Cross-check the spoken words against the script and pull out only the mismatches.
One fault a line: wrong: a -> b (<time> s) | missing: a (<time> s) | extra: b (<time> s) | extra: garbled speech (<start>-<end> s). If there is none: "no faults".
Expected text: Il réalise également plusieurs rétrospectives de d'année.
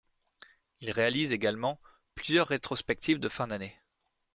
extra: fin (3.3 s)